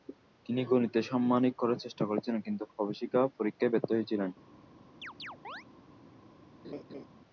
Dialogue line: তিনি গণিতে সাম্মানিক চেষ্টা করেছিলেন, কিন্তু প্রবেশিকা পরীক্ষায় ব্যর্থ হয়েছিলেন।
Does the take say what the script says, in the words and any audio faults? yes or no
no